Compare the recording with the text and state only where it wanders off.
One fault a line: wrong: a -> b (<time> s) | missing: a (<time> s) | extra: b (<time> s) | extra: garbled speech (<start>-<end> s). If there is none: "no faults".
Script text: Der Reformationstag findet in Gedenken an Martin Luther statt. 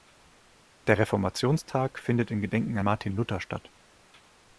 missing: an (2.8 s)